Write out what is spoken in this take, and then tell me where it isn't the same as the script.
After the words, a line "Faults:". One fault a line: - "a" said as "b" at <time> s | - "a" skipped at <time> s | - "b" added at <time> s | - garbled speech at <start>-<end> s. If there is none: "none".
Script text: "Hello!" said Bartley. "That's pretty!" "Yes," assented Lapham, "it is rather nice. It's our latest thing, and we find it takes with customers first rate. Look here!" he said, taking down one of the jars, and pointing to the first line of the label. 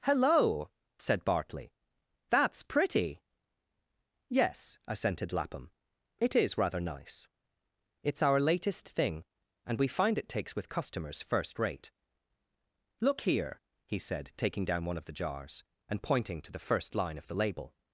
"Hello!" said Bartley. "That's pretty!" "Yes," assented Lapham, "it is rather nice. It's our latest thing, and we find it takes with customers first rate. Look here!" he said, taking down one of the jars, and pointing to the first line of the label.
Faults:
none